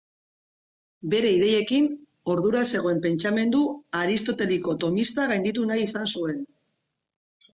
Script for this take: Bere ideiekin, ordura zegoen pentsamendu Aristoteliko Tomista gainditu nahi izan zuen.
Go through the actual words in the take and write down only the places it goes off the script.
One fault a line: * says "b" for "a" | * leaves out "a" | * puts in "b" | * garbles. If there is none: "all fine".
all fine